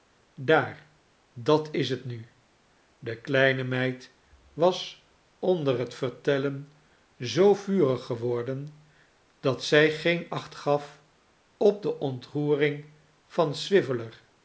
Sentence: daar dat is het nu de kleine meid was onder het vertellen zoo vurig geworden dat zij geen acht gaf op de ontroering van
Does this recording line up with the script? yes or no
yes